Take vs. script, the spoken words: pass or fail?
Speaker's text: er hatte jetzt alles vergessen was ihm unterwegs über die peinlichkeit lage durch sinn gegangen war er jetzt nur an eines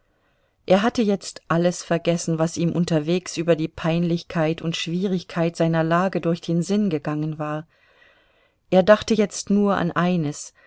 fail